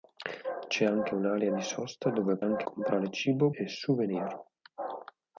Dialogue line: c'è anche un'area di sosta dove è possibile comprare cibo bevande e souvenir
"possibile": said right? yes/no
no